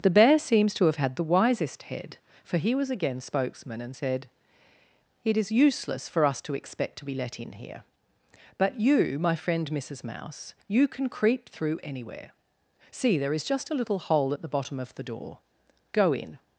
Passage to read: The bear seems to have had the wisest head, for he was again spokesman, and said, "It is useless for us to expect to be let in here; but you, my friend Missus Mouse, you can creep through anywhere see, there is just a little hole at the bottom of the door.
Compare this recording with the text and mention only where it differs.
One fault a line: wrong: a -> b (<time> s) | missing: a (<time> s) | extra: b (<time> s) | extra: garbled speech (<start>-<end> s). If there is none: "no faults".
extra: Go in (15.9 s)